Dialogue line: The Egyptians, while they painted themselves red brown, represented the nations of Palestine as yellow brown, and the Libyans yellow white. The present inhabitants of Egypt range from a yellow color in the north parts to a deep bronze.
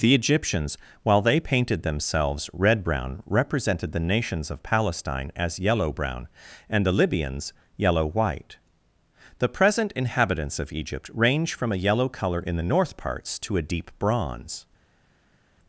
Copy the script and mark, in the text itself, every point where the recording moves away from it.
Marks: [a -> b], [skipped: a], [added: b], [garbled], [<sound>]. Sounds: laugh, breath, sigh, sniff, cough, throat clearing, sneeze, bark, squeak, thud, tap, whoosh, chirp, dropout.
The Egyptians, while they painted themselves red brown, represented the nations of Palestine as yellow brown, and the Libyans yellow white. The present inhabitants of Egypt range from a yellow color in the north parts to a deep bronze.